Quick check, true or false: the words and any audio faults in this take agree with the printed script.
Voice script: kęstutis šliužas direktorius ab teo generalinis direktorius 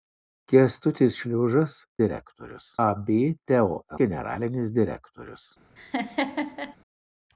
false